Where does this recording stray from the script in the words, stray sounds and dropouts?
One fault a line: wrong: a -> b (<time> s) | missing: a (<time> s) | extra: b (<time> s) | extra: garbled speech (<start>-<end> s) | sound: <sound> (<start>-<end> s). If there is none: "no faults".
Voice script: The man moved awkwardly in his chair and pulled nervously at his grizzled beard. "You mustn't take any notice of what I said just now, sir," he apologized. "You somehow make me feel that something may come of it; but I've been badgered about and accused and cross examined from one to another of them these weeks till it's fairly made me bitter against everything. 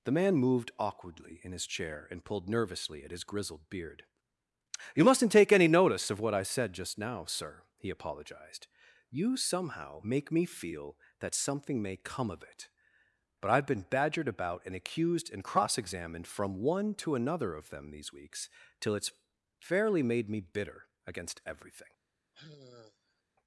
sound: sigh (22.3-23.2 s)